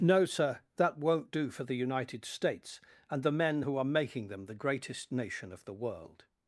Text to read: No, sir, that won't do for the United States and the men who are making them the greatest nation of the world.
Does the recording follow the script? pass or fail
pass